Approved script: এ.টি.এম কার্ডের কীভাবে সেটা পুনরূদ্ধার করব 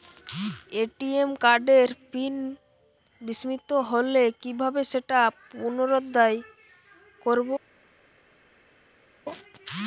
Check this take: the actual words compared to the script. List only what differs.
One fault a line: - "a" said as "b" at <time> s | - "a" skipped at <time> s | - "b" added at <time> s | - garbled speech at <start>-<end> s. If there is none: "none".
- "পিন বিস্মৃত হলে" added at 2.1 s